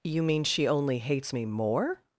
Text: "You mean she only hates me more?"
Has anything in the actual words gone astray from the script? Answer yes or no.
no